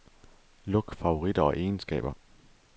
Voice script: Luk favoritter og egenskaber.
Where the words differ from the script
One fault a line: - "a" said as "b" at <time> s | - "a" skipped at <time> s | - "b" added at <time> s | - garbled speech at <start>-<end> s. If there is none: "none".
none